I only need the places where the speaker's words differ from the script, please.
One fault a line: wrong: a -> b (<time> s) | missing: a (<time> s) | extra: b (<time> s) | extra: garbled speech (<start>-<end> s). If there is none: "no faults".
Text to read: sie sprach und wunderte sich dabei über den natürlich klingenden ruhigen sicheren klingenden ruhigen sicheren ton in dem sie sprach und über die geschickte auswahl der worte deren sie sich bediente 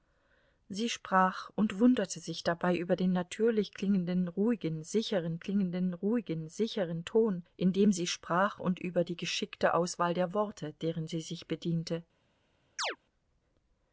no faults